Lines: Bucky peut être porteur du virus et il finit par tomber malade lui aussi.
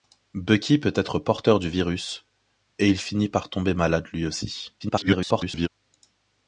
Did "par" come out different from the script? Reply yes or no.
no